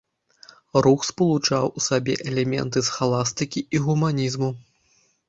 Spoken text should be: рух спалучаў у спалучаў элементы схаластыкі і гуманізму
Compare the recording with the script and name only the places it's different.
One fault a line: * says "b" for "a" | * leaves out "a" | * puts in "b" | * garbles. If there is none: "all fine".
* says "сабе" for "спалучаў"